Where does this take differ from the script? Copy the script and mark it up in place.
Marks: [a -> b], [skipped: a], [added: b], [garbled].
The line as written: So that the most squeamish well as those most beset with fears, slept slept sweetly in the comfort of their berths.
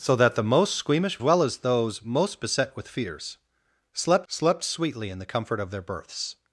So that the most squeamish well as those most beset with fears, slept slept sweetly in the comfort of their berths.